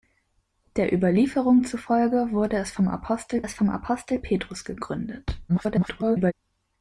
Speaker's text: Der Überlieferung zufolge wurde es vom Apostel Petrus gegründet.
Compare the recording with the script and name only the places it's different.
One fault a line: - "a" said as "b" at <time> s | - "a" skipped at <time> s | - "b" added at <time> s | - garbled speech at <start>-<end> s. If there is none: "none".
- "es vom Apostel" added at 3.4 s
- garbled speech at 5.5-6.3 s